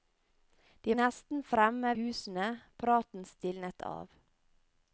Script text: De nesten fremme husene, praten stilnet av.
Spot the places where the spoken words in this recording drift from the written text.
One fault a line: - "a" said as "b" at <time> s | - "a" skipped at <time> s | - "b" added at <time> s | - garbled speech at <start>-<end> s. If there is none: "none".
none